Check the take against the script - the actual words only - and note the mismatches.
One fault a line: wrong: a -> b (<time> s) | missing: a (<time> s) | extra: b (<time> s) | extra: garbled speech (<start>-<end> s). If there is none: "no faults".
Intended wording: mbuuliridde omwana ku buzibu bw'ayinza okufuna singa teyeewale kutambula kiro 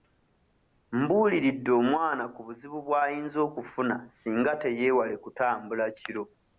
no faults